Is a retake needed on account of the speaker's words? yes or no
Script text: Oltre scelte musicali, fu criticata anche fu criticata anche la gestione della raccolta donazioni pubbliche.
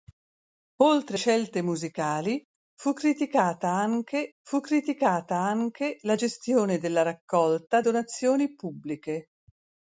no